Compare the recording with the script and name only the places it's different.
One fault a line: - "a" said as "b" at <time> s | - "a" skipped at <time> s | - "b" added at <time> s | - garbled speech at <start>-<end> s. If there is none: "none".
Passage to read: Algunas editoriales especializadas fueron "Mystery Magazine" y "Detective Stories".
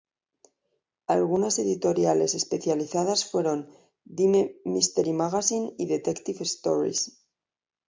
- "Dime" added at 4.0 s